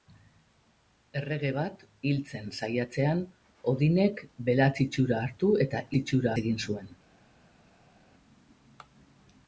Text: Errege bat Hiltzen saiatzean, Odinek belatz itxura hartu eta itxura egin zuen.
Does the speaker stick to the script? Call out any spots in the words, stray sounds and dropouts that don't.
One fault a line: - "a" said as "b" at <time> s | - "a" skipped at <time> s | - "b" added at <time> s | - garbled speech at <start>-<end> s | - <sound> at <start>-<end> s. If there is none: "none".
none